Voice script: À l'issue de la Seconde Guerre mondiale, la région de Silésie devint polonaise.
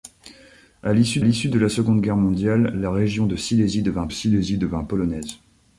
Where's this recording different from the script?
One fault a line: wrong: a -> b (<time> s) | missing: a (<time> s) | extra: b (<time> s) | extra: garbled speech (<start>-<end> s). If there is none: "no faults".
extra: l'issue (1.2 s)
extra: Silésie devint (4.1 s)